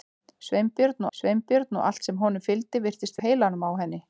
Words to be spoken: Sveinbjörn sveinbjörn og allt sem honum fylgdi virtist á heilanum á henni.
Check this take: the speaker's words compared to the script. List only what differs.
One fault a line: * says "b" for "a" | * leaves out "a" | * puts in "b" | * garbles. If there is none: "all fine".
all fine